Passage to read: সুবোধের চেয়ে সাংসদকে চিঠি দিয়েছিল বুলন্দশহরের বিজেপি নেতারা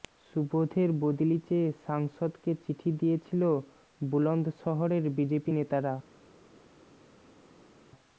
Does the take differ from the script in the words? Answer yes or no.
yes